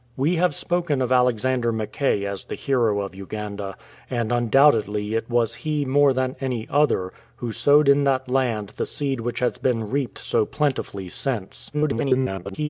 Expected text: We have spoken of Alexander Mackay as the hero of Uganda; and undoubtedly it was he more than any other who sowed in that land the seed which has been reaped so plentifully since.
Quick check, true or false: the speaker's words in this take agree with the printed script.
false